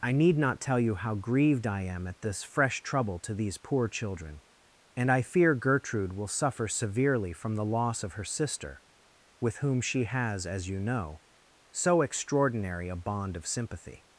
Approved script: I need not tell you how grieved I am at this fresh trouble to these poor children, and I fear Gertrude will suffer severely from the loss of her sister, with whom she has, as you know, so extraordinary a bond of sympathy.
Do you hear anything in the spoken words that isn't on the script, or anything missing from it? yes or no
no